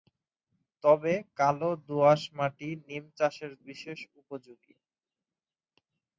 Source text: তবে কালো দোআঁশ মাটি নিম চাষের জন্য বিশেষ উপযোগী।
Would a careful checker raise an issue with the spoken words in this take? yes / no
yes